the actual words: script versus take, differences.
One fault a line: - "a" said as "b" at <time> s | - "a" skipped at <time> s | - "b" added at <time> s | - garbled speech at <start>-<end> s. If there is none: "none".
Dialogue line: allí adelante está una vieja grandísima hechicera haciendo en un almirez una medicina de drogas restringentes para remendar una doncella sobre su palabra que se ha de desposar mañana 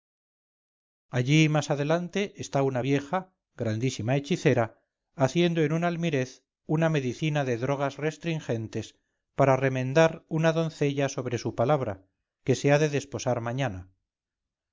- "más" added at 1.5 s